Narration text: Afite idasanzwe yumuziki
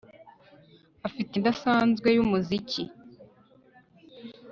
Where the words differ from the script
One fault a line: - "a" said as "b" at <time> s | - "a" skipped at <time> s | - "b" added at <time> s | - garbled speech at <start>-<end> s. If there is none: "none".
none